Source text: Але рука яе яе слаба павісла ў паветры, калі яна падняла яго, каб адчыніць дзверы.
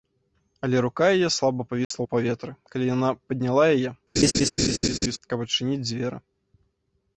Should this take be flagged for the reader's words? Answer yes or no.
yes